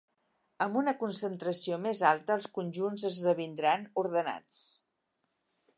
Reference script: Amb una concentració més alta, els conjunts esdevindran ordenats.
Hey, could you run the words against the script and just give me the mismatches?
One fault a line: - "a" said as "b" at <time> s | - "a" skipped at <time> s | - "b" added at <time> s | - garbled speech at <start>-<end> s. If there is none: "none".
none